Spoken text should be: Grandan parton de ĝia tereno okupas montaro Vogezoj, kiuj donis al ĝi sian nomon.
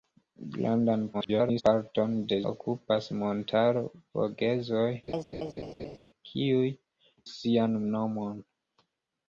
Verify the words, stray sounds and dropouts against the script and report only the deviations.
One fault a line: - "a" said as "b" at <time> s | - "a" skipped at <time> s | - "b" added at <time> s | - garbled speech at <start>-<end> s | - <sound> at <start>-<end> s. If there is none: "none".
- garbled speech at 1.1-1.6 s
- "ĝia tereno" skipped at 2.4 s
- laugh at 5.1-6.0 s
- "donis al ĝi" skipped at 6.7 s